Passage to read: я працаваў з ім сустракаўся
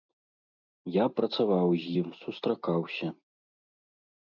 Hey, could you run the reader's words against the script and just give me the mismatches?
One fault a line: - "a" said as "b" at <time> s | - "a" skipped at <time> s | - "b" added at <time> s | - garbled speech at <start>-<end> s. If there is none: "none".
none